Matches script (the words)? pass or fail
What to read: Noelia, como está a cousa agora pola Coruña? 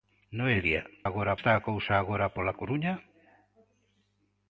fail